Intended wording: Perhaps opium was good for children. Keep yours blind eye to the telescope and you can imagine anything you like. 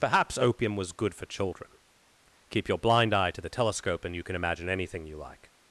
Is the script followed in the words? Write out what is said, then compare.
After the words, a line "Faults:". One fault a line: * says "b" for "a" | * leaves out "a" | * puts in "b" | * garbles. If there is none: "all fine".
Perhaps opium was good for children. Keep your blind eye to the telescope and you can imagine anything you like.
Faults:
* says "your" for "yours"